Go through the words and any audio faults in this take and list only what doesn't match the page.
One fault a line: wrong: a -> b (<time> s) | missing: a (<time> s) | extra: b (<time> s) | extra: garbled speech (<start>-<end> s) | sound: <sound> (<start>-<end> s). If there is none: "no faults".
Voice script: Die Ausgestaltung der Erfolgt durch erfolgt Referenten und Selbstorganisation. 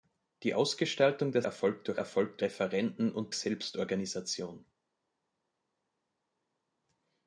no faults